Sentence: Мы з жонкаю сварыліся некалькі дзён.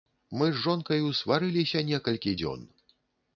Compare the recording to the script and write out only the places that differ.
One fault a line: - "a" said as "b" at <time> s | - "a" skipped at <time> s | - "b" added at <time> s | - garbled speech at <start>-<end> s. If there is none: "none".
none